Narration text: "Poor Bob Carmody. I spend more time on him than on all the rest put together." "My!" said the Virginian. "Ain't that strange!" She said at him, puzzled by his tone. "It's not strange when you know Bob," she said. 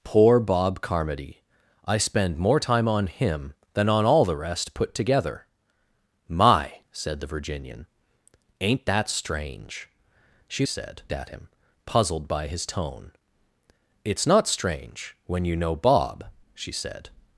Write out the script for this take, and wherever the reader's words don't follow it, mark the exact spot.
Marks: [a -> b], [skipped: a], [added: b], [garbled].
"Poor Bob Carmody. I spend more time on him than on all the rest put together." "My!" said the Virginian. "Ain't that strange!" She said at him, puzzled by his tone. "It's not strange when you know Bob," she said.